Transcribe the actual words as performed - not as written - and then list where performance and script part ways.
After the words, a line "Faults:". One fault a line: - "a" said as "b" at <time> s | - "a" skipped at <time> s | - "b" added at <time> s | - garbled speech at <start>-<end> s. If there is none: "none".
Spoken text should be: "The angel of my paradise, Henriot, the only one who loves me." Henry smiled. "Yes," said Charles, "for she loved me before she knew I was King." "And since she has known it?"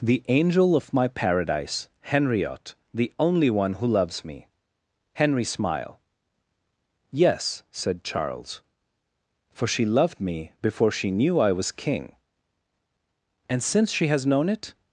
"The angel of my paradise, Henriot, the only one who loves me." Henry smile. "Yes," said Charles, "for she loved me before she knew I was King." "And since she has known it?"
Faults:
- "smiled" said as "smile" at 5.4 s